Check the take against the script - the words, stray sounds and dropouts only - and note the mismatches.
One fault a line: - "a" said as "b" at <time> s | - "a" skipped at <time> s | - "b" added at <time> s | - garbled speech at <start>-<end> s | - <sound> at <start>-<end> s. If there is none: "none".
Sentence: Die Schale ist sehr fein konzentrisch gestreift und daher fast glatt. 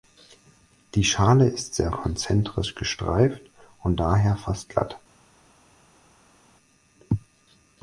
- "fein" skipped at 1.9 s